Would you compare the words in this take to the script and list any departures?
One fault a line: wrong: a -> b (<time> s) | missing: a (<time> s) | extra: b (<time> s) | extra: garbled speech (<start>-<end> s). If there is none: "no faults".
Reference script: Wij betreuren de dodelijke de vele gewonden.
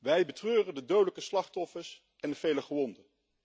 extra: slachtoffers en (1.2 s)